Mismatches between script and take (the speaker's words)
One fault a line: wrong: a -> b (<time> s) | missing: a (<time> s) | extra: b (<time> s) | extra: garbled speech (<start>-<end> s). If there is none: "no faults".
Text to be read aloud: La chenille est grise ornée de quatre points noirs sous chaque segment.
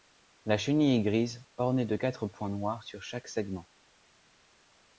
wrong: sous -> sur (2.8 s)